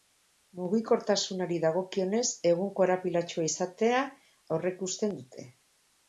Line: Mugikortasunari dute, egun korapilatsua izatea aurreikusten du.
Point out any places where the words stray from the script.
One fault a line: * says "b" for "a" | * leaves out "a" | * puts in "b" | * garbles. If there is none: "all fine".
* says "dagokionez" for "dute"
* says "dute" for "du"